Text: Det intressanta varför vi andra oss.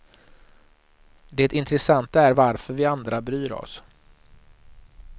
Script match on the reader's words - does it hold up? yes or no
no